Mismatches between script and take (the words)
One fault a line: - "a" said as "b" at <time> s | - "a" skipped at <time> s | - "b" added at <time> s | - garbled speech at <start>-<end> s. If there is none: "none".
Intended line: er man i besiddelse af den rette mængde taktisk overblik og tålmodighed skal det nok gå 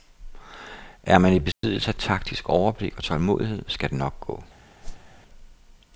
- "den rette mængde" skipped at 1.9 s